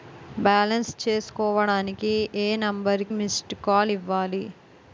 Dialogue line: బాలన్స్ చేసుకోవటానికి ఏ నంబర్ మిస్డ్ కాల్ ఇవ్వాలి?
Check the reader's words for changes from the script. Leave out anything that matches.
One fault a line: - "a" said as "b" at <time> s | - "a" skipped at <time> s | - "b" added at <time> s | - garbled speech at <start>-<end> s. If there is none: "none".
none